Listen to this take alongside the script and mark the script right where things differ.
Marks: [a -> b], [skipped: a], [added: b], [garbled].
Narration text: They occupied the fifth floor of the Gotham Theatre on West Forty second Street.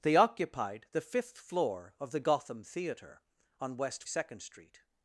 They occupied the fifth floor of the Gotham Theatre on West [skipped: Forty] second Street.